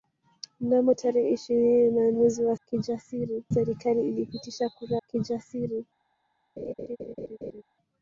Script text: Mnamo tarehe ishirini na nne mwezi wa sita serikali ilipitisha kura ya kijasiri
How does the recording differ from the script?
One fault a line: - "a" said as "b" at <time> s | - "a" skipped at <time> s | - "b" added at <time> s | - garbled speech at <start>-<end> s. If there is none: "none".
- "nne" skipped at 2.1 s
- "sita" said as "kijasiri" at 2.6 s
- "ya" skipped at 5.0 s